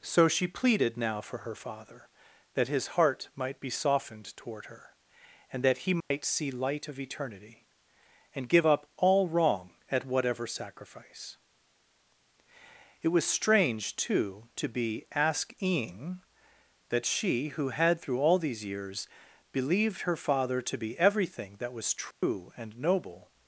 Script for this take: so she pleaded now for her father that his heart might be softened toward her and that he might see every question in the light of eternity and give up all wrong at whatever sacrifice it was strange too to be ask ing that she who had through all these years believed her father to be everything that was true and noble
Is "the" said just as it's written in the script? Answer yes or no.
no